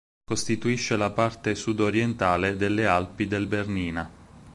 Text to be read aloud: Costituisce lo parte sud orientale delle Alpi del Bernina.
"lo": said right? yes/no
no